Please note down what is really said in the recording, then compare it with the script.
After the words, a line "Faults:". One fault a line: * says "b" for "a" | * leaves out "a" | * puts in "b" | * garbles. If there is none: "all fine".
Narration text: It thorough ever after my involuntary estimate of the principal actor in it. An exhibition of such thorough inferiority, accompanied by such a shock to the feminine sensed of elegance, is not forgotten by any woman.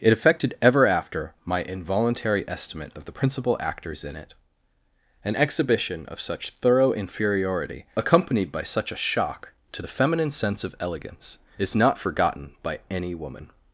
It affected ever after my involuntary estimate of the principal actors in it. An exhibition of such thorough inferiority, accompanied by such a shock to the feminine sense of elegance, is not forgotten by any woman.
Faults:
* says "affected" for "thorough"
* says "actors" for "actor"
* says "sense" for "sensed"